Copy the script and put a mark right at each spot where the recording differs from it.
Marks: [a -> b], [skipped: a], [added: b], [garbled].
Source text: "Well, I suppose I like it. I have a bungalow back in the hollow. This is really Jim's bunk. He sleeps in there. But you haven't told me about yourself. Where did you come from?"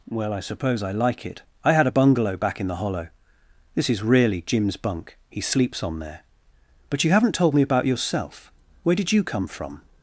"Well, I suppose I like it. I [have -> had] a bungalow back in the hollow. This is really Jim's bunk. He sleeps [in -> on] there. But you haven't told me about yourself. Where did you come from?"